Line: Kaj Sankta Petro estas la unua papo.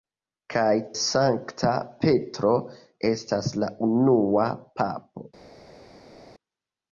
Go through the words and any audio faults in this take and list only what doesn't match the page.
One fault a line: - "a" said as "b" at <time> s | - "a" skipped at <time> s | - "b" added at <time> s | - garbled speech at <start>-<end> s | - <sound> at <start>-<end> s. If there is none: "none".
none